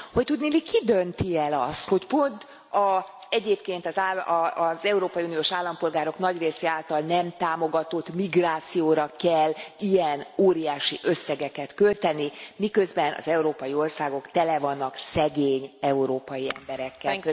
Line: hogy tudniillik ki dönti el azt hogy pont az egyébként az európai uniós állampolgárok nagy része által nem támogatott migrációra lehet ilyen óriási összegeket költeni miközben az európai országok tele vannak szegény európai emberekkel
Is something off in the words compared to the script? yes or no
yes